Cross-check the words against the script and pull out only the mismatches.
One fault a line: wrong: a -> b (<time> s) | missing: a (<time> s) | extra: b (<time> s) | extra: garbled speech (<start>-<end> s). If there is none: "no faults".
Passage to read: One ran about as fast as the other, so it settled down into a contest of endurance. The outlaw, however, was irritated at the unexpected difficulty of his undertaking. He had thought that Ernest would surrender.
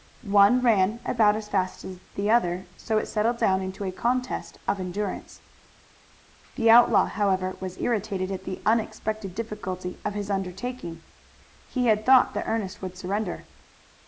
no faults